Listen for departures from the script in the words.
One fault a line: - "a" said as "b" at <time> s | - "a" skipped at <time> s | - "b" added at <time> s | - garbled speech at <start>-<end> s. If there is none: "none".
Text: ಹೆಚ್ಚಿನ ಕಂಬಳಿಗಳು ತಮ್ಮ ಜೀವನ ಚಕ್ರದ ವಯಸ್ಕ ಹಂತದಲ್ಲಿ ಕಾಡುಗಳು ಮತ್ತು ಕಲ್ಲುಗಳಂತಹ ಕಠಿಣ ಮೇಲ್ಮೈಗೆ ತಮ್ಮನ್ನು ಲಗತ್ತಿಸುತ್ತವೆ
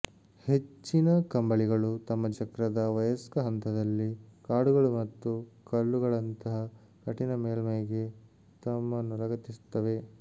- "ಜೀವನ" skipped at 2.3 s